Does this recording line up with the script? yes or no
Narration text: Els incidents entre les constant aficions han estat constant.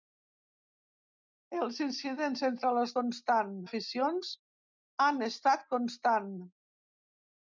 yes